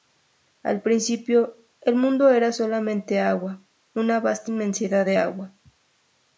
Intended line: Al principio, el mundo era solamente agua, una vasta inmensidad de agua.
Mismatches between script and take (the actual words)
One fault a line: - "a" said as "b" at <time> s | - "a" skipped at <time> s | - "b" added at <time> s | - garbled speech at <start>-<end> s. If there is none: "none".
none